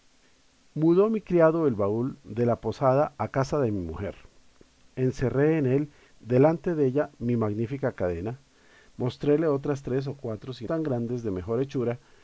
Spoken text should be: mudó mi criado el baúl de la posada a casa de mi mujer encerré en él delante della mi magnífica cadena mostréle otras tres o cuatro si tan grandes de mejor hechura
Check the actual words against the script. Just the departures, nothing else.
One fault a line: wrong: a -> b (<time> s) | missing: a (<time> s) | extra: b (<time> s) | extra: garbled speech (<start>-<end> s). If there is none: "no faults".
no faults